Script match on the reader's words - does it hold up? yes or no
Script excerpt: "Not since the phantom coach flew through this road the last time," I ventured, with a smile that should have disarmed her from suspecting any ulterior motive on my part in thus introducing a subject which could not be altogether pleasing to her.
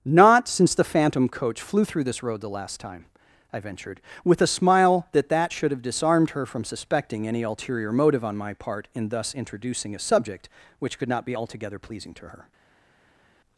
no